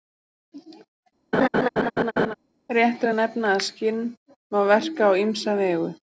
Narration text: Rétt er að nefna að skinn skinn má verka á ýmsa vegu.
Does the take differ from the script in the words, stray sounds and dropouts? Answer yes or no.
yes